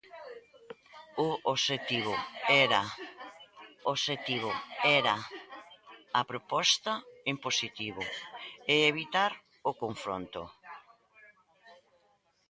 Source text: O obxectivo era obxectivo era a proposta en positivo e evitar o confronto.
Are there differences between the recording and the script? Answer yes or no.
no